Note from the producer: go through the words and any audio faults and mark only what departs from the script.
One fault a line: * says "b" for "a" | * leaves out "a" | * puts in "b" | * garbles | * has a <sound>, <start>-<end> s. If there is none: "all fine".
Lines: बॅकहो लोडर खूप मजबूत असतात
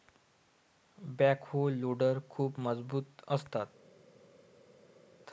all fine